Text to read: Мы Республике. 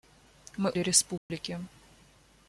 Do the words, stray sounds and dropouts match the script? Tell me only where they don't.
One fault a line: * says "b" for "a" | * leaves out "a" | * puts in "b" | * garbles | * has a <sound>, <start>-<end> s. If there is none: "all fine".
* has a dropout, 1.2-1.3 s